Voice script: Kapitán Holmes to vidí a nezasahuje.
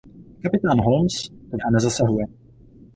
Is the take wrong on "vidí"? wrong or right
wrong